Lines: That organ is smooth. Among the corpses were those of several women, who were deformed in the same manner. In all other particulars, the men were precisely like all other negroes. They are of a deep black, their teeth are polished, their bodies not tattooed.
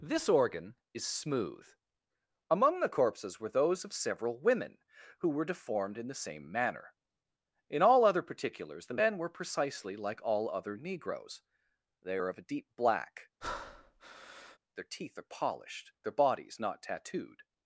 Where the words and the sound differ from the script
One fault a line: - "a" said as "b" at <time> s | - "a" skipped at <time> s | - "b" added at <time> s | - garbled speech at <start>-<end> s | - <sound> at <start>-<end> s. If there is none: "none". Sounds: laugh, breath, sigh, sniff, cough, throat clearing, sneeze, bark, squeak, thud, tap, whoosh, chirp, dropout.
- "That" said as "This" at 0.0 s
- breath at 13.4-14.6 s